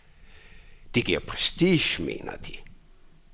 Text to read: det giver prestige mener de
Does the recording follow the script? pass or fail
pass